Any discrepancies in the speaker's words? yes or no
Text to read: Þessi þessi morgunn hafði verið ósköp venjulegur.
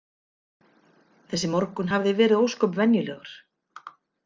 yes